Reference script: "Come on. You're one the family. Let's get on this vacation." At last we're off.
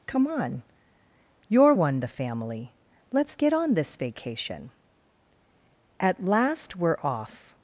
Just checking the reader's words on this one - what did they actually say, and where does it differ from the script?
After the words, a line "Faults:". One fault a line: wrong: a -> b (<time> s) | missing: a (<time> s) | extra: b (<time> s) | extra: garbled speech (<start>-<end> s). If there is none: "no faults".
"Come on. You're one the family. Let's get on this vacation." At last we're off.
Faults:
no faults